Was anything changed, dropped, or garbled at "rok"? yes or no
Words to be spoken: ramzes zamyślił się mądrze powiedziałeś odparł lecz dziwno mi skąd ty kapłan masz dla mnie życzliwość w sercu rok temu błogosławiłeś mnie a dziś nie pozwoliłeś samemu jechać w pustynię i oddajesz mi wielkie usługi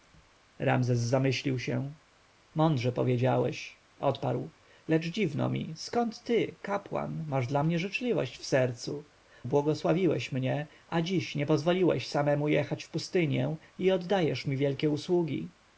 yes